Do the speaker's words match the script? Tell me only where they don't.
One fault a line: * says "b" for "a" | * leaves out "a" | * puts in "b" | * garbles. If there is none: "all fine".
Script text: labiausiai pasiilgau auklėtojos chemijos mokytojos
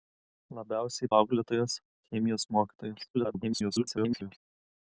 * leaves out "pasiilgau"
* garbles